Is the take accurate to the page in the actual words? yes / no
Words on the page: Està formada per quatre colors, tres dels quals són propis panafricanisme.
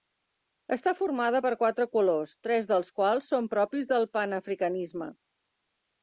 no